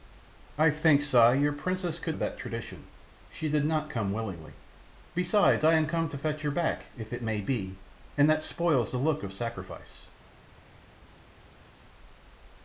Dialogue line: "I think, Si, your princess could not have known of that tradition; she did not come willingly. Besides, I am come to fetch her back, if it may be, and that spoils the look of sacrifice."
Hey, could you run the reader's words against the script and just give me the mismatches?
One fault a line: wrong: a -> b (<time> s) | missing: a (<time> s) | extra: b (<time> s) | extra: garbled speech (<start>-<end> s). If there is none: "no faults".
missing: not have known (2.1 s)